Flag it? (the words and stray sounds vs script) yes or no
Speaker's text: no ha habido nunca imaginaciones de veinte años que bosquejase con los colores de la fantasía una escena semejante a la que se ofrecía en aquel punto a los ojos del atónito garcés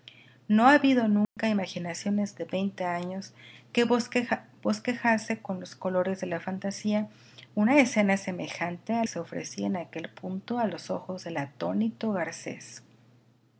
yes